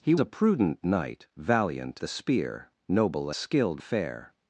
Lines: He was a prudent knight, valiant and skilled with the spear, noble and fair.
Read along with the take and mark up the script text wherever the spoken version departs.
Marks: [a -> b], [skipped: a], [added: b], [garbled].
He [skipped: was] a prudent knight, valiant [skipped: and skilled with] the spear, noble [and -> skilled] fair.